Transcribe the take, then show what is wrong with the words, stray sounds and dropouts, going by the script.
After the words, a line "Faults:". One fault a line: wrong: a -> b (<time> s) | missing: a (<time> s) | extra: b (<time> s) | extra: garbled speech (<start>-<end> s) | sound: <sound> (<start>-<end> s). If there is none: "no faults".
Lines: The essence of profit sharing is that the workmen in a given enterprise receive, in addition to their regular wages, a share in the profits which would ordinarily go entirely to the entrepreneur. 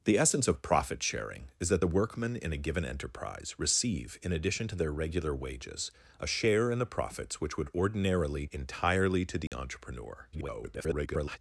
The essence of profit sharing is that the workmen in a given enterprise receive, in addition to their regular wages, a share in the profits which would ordinarily entirely to the entrepreneur. [garbled]
Faults:
missing: go (8.4 s)
sound: dropout (9.5-9.5 s)
extra: garbled speech (10.3-11.4 s)